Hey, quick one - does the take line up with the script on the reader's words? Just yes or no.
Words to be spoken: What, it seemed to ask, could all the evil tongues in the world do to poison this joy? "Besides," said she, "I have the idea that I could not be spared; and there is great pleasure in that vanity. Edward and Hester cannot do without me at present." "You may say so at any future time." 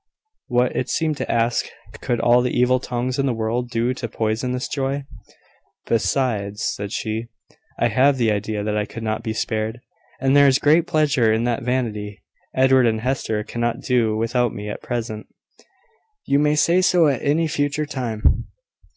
yes